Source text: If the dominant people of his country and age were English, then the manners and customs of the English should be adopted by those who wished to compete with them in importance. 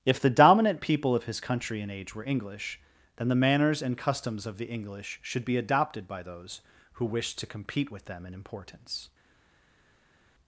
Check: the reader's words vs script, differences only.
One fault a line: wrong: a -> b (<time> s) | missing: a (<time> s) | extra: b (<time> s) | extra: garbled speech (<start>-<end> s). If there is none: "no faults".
no faults